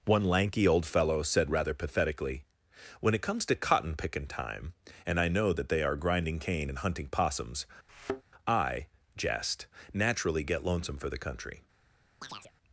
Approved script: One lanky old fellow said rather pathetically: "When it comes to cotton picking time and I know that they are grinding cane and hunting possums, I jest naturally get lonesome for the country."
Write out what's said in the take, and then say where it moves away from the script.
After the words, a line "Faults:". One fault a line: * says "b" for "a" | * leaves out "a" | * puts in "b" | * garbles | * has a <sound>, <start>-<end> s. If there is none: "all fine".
One lanky old fellow said rather pathetically: "When it comes to cotton picking time and I know that they are grinding cane and hunting possums, I jest naturally get lonesome for the country."
Faults:
* has a thud, 7.9-8.2 s
* has a chirp, 12.2-12.5 s